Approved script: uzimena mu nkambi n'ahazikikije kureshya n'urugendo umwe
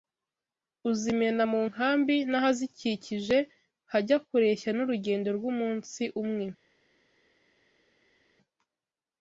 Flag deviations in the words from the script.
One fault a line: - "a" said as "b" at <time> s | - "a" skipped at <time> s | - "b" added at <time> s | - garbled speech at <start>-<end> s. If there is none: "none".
- "hajya" added at 3.9 s
- "rw'umunsi" added at 5.4 s